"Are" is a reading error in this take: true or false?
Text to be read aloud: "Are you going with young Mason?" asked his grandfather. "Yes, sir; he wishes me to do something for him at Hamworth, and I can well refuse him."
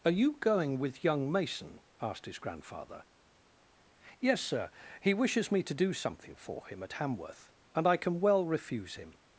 false